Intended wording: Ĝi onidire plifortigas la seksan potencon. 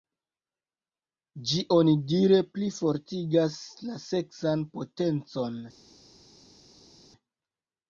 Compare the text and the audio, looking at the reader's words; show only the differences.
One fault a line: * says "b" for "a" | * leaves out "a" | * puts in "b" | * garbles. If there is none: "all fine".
all fine